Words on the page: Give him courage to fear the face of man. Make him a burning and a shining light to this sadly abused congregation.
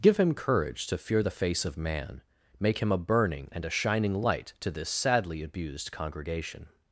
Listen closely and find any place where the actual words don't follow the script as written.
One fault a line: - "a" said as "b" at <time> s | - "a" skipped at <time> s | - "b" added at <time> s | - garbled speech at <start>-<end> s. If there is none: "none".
none